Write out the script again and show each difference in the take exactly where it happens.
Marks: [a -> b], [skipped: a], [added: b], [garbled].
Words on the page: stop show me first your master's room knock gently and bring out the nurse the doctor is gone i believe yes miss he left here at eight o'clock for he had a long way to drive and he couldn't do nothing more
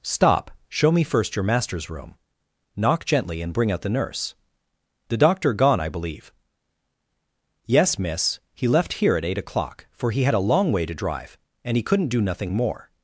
stop show me first your master's room knock gently and bring out the nurse the doctor [skipped: is] gone i believe yes miss he left here at eight o'clock for he had a long way to drive and he couldn't do nothing more